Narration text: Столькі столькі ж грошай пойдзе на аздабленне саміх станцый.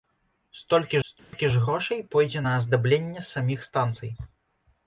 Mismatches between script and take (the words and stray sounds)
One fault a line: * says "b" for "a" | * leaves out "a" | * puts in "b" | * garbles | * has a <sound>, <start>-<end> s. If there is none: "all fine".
* has a dropout, 1.2-1.3 s